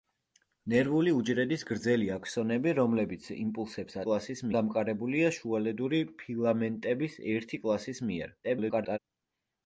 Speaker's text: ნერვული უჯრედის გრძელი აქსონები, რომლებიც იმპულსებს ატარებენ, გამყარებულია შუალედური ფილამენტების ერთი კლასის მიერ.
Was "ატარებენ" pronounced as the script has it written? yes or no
no